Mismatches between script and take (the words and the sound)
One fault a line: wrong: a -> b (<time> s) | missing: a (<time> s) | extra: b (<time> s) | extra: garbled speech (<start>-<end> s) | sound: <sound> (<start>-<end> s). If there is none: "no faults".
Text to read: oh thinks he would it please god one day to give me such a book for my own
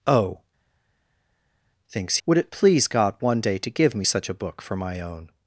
missing: he (2.2 s)